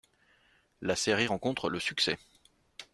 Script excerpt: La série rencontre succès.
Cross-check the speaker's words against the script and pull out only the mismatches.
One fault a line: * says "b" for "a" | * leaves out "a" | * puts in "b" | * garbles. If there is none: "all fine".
* puts in "le"